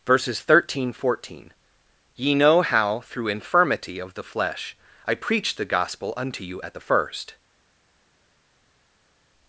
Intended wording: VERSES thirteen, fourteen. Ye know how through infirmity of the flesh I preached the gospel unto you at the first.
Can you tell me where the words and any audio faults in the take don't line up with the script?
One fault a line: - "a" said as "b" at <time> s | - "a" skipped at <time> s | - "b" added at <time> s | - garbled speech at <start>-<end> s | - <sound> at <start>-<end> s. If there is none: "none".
none